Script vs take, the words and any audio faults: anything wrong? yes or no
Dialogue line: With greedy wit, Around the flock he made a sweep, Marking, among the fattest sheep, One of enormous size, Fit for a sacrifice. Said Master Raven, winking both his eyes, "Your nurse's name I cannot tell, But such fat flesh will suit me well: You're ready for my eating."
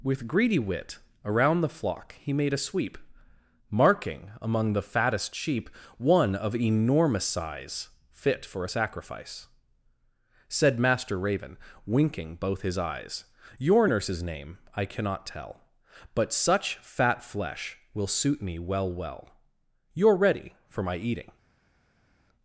yes